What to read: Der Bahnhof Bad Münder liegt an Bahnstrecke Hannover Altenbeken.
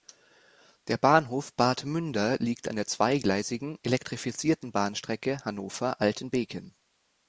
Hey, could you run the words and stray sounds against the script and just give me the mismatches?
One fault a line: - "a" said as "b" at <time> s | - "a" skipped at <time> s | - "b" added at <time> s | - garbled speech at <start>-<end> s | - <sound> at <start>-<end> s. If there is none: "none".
- "der zweigleisigen elektrifizierten" added at 2.8 s